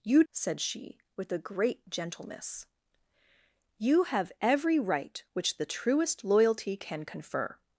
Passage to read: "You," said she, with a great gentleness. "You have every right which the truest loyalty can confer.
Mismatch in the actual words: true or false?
false